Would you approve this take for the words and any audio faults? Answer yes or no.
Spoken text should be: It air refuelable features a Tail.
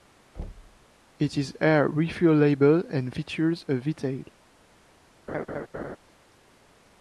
no